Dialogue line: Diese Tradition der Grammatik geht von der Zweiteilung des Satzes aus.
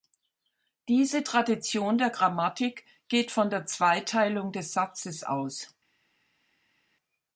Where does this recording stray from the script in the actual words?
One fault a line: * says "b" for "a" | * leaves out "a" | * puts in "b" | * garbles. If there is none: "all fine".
all fine